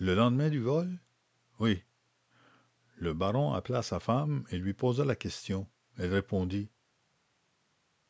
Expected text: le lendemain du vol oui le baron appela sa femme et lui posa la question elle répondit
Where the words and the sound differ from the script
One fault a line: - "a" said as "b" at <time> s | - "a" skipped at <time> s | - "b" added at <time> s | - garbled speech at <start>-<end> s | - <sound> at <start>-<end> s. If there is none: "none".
none